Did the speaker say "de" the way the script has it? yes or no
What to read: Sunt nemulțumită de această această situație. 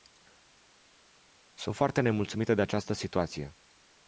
yes